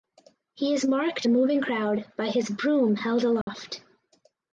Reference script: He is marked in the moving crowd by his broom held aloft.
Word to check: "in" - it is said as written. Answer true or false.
false